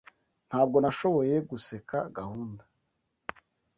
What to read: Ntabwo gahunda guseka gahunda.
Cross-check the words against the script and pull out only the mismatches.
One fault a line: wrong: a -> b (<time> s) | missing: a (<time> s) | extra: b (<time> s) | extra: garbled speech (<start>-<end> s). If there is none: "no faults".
wrong: gahunda -> nashoboye (0.8 s)